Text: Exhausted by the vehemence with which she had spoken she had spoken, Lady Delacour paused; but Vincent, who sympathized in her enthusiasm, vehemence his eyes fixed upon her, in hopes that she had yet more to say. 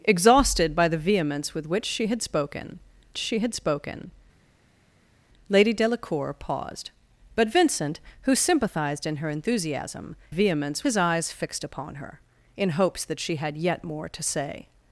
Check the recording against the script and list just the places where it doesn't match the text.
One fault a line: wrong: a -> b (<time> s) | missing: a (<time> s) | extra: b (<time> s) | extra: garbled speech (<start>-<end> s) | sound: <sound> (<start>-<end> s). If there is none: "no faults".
no faults